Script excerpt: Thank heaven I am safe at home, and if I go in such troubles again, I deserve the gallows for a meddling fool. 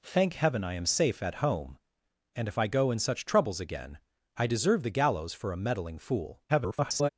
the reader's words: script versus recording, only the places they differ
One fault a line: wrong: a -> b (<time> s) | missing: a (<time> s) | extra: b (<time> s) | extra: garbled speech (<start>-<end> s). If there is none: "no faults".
extra: garbled speech (6.5-7.1 s)